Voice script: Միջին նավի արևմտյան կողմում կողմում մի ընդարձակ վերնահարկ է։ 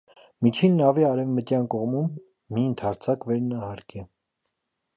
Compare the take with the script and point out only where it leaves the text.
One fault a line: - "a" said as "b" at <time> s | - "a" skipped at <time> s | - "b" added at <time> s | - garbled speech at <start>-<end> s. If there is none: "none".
- "կողմում" skipped at 2.1 s